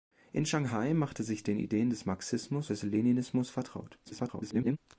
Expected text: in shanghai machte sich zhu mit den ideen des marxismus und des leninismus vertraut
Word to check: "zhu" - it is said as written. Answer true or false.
false